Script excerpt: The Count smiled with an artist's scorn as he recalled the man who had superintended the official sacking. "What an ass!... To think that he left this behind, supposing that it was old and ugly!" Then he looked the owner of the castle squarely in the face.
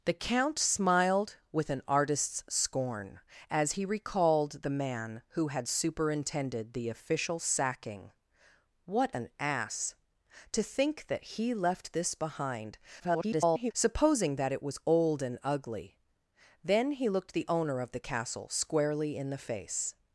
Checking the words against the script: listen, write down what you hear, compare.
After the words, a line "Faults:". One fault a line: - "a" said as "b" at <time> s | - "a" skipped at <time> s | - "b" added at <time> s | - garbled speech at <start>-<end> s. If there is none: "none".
The Count smiled with an artist's scorn as he recalled the man who had superintended the official sacking. "What an ass!... To think that he left this behind, [garbled] supposing that it was old and ugly!" Then he looked the owner of the castle squarely in the face.
Faults:
- garbled speech at 13.0-13.7 s